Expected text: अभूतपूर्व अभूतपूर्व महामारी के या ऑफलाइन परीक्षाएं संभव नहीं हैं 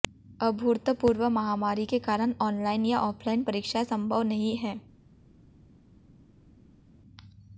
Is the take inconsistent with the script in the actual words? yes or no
yes